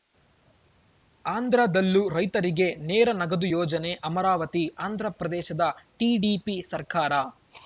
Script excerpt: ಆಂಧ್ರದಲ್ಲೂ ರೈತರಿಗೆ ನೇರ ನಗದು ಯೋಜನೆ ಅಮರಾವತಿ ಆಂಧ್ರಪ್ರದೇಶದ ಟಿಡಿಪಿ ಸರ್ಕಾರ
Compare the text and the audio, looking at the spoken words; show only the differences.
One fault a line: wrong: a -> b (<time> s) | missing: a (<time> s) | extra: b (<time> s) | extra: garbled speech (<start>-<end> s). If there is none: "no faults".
no faults